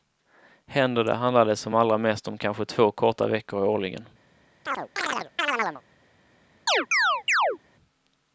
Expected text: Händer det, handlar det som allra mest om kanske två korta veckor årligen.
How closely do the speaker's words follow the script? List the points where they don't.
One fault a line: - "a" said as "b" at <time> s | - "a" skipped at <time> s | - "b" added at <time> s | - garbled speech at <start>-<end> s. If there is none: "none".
none